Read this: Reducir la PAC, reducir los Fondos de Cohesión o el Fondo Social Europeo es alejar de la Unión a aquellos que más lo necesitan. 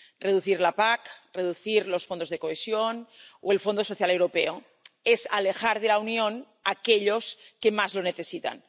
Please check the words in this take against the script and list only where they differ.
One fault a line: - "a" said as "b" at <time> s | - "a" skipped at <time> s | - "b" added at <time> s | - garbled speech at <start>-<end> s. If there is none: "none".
none